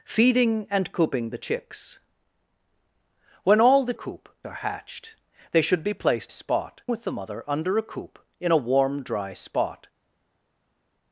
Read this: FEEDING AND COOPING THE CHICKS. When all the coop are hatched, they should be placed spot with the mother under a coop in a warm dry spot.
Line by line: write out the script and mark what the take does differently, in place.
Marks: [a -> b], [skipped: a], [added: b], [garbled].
FEEDING AND COOPING THE CHICKS. When all the coop are hatched, they should be placed spot with the mother under a coop in a warm dry spot.